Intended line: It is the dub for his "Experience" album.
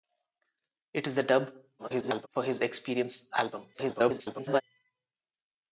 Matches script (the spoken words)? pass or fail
fail